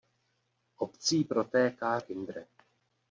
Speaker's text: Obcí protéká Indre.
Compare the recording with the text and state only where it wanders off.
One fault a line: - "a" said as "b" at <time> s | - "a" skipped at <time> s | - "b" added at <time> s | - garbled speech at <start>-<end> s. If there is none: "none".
none